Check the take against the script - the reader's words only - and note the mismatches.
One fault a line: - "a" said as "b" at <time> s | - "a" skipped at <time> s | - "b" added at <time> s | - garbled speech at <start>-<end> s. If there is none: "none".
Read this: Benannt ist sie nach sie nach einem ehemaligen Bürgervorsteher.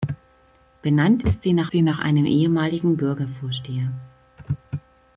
none